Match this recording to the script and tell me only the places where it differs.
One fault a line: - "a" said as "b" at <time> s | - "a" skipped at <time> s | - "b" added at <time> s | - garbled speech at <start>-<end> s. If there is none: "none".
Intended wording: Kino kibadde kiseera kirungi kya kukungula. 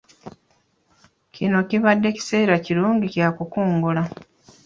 none